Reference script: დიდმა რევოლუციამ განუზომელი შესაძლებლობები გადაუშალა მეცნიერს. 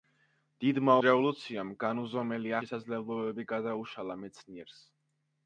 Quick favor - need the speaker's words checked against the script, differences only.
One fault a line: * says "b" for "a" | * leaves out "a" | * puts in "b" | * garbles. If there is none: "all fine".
all fine